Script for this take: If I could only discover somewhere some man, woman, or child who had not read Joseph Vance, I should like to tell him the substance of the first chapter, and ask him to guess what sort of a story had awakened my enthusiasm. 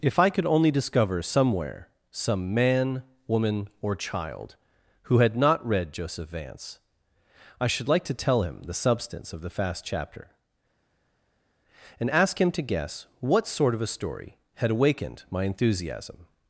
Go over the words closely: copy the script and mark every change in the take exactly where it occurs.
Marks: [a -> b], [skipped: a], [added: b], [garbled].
If I could only discover somewhere some man, woman, or child who had not read Joseph Vance, I should like to tell him the substance of the [first -> fast] chapter, and ask him to guess what sort of a story had awakened my enthusiasm.